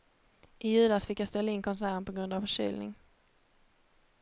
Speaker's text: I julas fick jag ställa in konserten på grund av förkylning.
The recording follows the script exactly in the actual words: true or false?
true